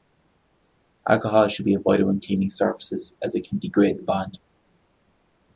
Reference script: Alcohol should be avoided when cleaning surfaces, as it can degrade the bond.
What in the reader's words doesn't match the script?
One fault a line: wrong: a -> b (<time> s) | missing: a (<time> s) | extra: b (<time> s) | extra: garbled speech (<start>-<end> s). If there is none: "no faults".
no faults